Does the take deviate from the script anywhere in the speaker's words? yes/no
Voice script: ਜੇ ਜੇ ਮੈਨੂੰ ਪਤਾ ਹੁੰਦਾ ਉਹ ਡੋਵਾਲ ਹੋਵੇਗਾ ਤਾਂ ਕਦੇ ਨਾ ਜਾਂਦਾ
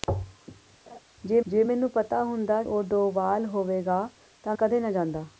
no